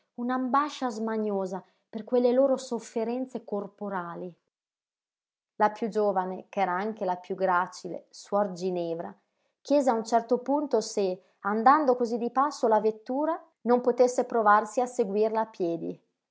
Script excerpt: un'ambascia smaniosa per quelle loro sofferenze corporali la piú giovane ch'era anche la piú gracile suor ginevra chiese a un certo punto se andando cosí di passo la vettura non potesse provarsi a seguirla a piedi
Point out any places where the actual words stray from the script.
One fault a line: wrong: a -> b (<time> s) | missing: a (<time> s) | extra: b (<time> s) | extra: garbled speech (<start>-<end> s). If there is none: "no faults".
no faults